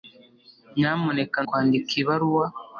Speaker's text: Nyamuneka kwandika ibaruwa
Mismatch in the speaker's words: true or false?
false